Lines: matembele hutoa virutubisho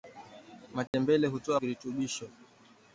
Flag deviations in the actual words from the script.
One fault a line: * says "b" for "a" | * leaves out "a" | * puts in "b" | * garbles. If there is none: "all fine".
all fine